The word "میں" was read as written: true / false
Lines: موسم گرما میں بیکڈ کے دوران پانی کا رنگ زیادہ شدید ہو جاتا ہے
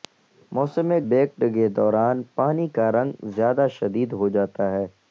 false